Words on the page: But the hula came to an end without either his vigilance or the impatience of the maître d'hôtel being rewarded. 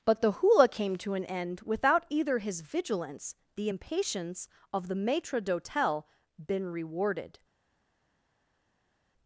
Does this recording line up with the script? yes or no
no